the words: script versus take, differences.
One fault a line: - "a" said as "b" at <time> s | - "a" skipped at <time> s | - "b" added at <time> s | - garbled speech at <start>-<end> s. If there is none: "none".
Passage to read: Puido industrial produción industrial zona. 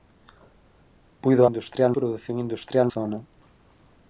none